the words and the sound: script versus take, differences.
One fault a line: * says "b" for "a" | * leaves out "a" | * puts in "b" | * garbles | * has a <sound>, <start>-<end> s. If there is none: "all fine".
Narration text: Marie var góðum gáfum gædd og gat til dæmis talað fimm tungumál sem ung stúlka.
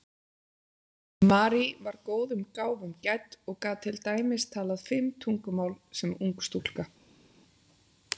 all fine